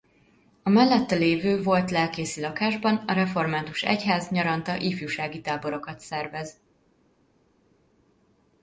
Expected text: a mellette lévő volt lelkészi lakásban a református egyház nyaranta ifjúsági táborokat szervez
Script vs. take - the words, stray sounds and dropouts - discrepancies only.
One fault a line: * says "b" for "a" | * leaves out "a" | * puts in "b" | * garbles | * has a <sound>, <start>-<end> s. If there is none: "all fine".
all fine